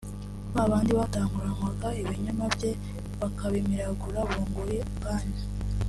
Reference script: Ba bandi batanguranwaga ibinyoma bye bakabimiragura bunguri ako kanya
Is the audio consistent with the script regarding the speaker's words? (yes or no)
no